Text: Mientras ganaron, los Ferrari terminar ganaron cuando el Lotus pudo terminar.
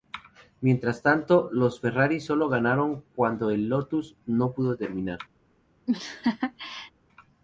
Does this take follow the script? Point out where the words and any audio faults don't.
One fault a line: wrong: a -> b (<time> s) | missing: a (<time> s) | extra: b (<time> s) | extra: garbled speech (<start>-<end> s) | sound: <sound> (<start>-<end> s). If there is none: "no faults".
wrong: ganaron -> tanto (1.0 s)
wrong: terminar -> solo (2.2 s)
extra: no (4.2 s)
sound: laugh (5.9-6.9 s)